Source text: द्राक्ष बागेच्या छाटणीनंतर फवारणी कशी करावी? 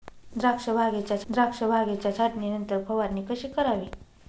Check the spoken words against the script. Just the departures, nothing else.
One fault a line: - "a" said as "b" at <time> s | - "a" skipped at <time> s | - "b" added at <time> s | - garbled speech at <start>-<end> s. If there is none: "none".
- "द्राक्ष बागेच्या" added at 1.3 s